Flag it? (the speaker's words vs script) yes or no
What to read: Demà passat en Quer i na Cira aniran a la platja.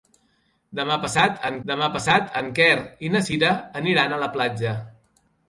yes